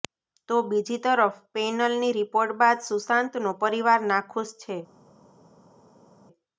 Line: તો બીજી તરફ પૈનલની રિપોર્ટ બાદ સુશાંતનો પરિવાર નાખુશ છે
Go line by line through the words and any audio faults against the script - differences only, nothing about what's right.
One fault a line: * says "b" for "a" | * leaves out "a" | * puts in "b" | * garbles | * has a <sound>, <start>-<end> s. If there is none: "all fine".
all fine